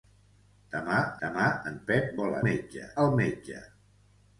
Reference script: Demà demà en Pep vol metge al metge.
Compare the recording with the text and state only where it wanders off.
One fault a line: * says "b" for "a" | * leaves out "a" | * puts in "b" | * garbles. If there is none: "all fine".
all fine